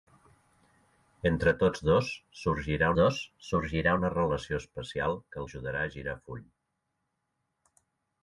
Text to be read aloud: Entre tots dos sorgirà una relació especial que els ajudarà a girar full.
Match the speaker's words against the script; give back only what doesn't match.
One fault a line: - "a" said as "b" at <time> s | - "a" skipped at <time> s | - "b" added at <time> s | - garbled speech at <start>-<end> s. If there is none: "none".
- "dos sorgirà" added at 3.0 s
- "els" skipped at 5.4 s